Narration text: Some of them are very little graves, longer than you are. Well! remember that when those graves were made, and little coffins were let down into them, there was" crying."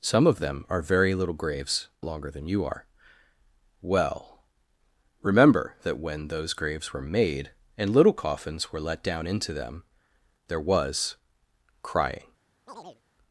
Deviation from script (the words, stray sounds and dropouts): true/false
true